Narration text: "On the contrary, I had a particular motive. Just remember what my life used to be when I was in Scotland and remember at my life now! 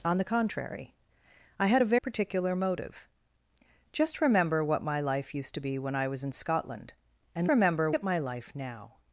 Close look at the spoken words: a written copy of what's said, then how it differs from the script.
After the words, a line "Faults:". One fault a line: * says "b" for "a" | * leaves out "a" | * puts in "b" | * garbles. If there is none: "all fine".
"On the contrary, I had a particular motive. Just remember what my life used to be when I was in Scotland and remember at my life now!
Faults:
all fine